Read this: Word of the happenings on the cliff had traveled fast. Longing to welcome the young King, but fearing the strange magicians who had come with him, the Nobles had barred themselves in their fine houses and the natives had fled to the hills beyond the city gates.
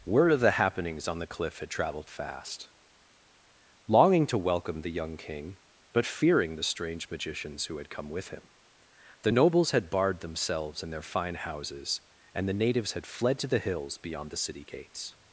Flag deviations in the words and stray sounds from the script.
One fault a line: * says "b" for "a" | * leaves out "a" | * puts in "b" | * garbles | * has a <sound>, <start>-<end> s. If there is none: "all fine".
all fine